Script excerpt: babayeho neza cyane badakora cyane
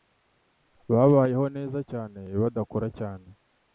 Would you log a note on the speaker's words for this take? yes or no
no